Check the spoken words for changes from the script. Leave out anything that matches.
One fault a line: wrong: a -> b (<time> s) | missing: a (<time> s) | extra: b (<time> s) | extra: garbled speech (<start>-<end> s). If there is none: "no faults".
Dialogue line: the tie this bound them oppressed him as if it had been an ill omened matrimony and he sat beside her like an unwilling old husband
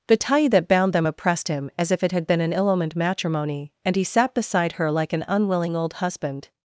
wrong: this -> that (0.5 s)